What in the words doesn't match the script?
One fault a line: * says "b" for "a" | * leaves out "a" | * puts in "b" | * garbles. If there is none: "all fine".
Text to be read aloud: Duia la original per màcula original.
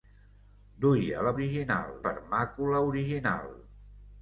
all fine